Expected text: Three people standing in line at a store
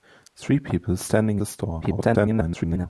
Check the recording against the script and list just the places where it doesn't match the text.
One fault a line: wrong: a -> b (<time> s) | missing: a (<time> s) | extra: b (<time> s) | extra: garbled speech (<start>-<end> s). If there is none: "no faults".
missing: in line at (1.4 s)
extra: garbled speech (1.8-2.9 s)